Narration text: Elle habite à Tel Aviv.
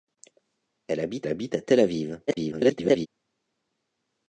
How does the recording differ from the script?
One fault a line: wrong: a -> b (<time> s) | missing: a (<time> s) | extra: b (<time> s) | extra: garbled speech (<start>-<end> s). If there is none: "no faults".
extra: habite (1.3 s)
extra: garbled speech (2.3-3.1 s)